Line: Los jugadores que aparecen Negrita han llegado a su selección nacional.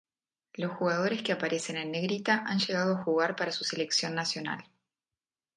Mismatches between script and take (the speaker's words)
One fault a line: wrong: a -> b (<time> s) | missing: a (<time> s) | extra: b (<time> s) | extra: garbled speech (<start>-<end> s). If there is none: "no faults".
extra: en (1.8 s)
extra: jugar para (3.0 s)